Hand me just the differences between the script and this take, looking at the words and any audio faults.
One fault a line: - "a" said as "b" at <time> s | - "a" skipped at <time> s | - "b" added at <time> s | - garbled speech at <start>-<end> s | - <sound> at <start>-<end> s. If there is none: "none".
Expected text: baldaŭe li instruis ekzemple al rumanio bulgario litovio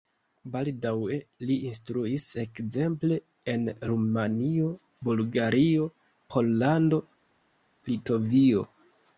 - "al" said as "en" at 3.5 s
- "pollando" added at 6.4 s